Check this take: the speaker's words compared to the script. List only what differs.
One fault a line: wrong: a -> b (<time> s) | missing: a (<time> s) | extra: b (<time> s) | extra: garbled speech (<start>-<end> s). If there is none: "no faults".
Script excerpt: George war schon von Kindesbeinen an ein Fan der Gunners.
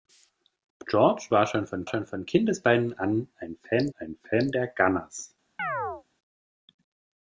extra: schon von (1.8 s)
extra: ein Fan (4.0 s)